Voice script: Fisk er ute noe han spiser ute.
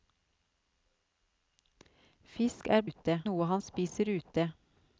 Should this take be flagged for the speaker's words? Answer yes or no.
no